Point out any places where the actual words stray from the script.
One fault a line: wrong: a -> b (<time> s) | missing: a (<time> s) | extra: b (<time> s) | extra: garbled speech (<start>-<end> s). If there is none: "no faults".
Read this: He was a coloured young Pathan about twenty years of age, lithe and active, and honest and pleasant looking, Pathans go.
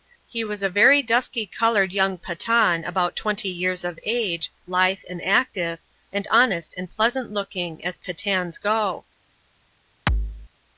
extra: very dusky (0.7 s)
extra: as (7.8 s)